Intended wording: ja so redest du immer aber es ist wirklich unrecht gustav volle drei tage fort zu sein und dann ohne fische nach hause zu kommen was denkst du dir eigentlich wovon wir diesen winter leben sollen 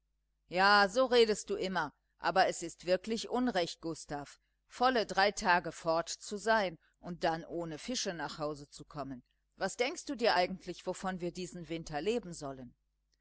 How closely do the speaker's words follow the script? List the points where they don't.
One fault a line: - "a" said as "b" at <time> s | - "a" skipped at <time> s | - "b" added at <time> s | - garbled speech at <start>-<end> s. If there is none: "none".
none